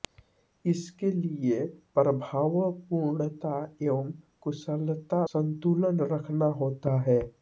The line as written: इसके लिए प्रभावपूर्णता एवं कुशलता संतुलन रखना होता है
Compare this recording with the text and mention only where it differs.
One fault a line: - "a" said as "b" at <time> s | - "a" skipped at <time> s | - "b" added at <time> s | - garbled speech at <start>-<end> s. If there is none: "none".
none